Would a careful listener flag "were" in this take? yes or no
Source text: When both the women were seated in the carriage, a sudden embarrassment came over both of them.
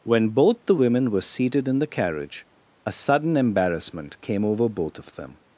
no